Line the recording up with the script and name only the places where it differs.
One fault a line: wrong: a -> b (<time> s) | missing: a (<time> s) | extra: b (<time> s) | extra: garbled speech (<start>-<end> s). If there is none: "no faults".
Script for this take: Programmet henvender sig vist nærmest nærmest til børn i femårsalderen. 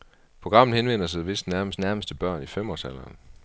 no faults